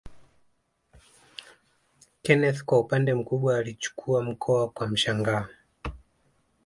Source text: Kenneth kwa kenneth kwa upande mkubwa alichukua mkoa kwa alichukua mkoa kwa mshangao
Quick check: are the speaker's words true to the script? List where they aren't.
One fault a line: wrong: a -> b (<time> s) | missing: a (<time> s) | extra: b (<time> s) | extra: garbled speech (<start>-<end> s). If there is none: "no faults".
missing: kenneth kwa (2.8 s)
missing: alichukua mkoa kwa (4.9 s)